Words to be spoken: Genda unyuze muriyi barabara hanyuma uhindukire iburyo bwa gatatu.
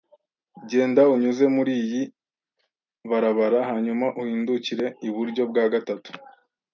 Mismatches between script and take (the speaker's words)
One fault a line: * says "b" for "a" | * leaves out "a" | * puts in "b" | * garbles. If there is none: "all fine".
all fine